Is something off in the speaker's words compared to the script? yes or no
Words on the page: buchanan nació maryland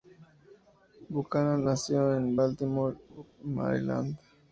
yes